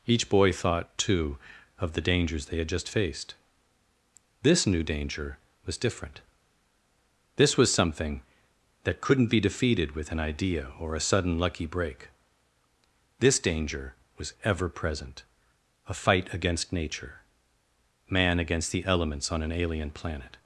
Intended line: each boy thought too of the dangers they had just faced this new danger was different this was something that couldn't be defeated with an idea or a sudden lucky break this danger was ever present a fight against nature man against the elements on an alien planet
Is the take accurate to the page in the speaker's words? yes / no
yes